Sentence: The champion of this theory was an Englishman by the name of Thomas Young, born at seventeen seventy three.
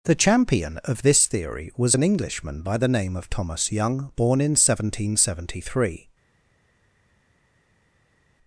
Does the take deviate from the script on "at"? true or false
true